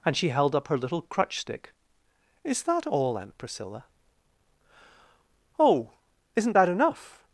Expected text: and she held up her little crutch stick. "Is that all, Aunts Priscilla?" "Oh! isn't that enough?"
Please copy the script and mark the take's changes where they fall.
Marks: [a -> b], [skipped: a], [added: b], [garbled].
and she held up her little crutch stick. "Is that all, [Aunts -> Aunt] Priscilla?" "Oh! isn't that enough?"